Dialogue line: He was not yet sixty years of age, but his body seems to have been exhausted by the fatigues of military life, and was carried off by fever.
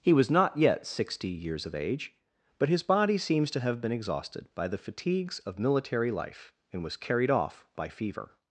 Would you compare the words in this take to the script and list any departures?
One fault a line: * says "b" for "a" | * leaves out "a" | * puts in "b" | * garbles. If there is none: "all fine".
all fine